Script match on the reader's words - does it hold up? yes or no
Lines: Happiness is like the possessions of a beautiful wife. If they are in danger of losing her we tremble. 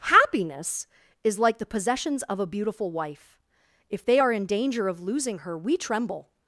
yes